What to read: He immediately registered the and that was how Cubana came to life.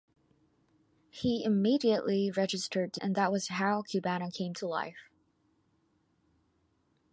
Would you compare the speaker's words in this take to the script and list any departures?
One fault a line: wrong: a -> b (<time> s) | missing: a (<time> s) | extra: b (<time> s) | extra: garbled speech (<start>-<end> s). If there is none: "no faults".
no faults